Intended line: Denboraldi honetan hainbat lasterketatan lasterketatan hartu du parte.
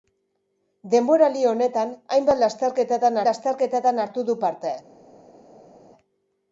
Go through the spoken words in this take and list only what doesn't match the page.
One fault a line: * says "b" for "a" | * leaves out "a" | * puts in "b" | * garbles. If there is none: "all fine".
all fine